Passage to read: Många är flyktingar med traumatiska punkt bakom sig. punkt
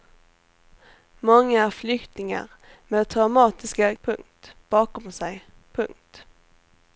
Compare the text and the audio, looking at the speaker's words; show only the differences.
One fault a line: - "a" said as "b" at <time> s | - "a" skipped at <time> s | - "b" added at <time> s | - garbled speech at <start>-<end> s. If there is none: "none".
none